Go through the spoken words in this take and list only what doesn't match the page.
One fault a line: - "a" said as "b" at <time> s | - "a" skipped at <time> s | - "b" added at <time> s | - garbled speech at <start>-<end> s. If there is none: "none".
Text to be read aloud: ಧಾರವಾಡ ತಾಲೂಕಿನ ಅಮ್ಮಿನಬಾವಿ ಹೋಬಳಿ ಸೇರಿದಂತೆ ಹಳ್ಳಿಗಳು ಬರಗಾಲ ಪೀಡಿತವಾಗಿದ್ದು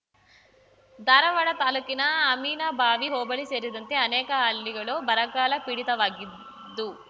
- "ಅನೇಕ" added at 4.0 s